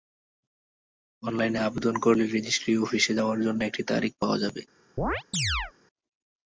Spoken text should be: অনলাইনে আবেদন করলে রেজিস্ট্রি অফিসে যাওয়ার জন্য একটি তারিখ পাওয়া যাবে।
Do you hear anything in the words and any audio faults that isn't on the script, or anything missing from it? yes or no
yes